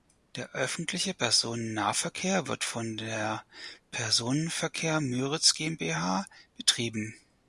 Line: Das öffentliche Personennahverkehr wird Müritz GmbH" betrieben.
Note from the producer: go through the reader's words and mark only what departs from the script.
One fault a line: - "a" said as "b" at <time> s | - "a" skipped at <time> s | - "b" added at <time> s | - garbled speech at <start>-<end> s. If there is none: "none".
- "Das" said as "Der" at 0.3 s
- "von der Personenverkehr" added at 2.6 s